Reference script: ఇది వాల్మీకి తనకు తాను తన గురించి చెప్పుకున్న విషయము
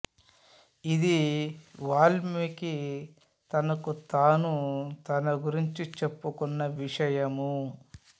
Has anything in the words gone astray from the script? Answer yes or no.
no